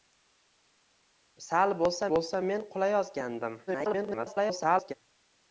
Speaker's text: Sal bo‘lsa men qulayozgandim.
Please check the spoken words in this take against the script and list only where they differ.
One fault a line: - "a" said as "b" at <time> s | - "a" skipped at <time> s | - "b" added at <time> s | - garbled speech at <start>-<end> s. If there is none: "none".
- "bo‘lsa" added at 2.1 s
- garbled speech at 3.7-4.9 s